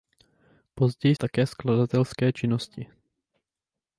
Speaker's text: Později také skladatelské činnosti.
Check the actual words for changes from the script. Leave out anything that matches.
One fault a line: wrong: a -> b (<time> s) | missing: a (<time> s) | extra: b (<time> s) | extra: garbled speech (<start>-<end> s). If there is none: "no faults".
no faults